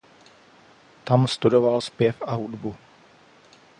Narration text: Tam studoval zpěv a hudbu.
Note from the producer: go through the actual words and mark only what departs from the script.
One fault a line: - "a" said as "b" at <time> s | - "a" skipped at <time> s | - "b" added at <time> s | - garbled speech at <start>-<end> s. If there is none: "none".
none